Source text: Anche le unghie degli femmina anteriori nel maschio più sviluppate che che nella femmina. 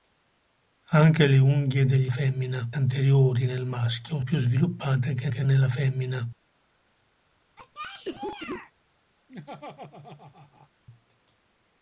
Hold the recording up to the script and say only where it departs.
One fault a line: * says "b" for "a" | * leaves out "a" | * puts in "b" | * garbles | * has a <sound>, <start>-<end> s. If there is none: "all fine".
* has a cough, 7.6-8.7 s
* has a laugh, 9.3-10.7 s